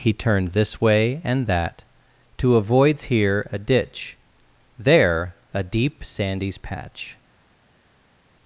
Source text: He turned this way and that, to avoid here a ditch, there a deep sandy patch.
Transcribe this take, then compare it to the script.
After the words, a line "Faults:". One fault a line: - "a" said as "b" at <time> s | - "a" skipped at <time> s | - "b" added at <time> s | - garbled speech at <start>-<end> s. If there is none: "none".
He turned this way and that, to avoids here a ditch, there a deep sandys patch.
Faults:
- "avoid" said as "avoids" at 2.5 s
- "sandy" said as "sandys" at 6.0 s